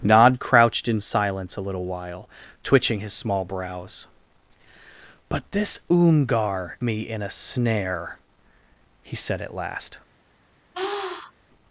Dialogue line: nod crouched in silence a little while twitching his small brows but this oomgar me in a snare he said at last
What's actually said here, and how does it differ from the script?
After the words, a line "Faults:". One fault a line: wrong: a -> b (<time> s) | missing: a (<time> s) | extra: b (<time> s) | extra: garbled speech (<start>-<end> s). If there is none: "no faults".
nod crouched in silence a little while twitching his small brows but this oomgar me in a snare he said at last
Faults:
no faults